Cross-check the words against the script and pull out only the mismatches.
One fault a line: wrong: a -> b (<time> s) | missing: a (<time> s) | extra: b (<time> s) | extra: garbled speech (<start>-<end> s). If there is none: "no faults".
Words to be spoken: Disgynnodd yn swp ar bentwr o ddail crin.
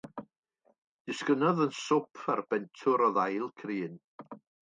no faults